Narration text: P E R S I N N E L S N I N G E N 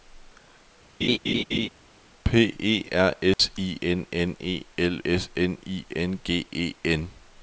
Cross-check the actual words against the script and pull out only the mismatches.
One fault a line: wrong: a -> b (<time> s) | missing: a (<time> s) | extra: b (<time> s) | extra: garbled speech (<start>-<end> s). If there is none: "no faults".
no faults